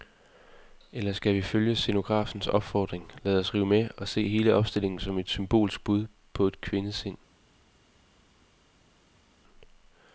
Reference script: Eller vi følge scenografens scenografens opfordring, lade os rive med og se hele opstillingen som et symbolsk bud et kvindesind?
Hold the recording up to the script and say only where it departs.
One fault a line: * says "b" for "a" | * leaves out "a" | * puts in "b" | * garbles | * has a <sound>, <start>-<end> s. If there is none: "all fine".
* puts in "skal"
* leaves out "scenografens"
* puts in "på"